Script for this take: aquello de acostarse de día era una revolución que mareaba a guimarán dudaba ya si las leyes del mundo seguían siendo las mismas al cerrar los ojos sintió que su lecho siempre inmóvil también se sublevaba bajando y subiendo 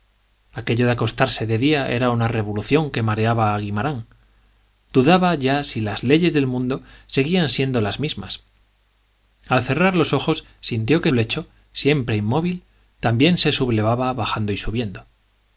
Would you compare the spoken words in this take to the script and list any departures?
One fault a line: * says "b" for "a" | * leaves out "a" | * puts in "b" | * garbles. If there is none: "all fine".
* leaves out "su"